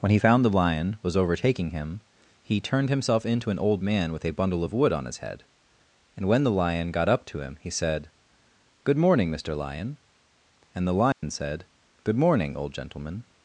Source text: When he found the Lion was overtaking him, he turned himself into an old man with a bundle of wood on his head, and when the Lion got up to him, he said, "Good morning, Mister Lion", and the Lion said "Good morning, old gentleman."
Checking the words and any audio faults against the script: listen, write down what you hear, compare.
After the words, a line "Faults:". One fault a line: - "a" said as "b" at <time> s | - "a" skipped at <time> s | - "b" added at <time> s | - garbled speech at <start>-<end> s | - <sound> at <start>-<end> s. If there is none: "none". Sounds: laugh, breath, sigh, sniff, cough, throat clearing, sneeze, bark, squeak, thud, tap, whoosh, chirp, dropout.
When he found the Lion was overtaking him, he turned himself into an old man with a bundle of wood on his head, and when the Lion got up to him, he said, "Good morning, Mister Lion", and the Lion said "Good morning, old gentleman."
Faults:
- dropout at 11.1-11.2 s